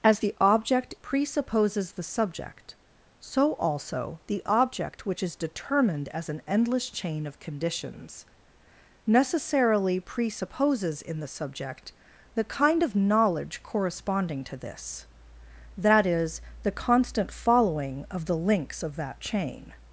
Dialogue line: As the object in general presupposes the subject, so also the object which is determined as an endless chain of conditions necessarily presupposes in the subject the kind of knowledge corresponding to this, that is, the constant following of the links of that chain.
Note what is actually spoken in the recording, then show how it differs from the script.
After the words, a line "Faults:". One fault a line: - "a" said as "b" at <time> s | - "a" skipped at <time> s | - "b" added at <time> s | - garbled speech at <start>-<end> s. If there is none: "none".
As the object presupposes the subject, so also the object which is determined as an endless chain of conditions necessarily presupposes in the subject the kind of knowledge corresponding to this, that is, the constant following of the links of that chain.
Faults:
- "in general" skipped at 0.9 s